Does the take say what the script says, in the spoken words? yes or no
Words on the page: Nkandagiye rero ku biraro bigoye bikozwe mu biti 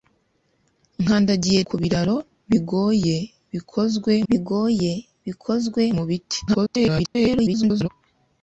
no